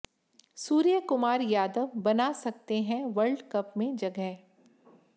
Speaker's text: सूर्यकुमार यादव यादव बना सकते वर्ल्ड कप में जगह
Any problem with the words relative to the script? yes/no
yes